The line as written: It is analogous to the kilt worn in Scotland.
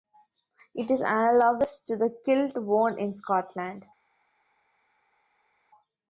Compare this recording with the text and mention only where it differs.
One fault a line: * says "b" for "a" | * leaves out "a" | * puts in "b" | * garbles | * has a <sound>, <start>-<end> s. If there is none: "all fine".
all fine